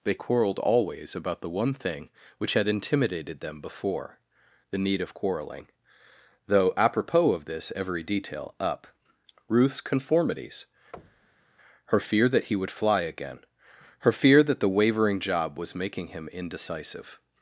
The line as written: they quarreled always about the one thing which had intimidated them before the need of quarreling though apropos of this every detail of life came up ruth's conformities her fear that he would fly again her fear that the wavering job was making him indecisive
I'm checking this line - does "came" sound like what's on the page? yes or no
no